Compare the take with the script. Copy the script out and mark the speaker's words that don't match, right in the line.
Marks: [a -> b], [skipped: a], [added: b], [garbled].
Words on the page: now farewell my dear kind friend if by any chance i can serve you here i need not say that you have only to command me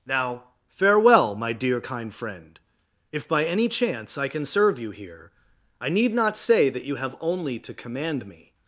now farewell my dear kind friend if by any chance i can serve you here i need not say that you have only to command me